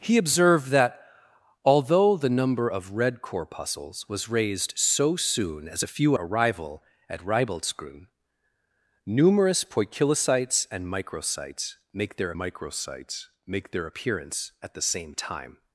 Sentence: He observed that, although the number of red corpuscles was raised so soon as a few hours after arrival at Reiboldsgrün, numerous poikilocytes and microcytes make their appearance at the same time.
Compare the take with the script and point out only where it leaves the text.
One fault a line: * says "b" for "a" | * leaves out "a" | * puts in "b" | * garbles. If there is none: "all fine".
* leaves out "hours after"
* puts in "microcytes make their"